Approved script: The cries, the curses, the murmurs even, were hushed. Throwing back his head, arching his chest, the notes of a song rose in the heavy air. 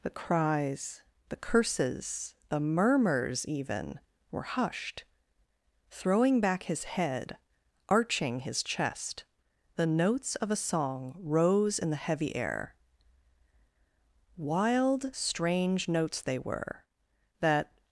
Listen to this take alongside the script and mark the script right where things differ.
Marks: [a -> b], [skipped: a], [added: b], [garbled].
The cries, the curses, the murmurs even, were hushed. Throwing back his head, arching his chest, the notes of a song rose in the heavy air. [added: Wild strange notes they were that]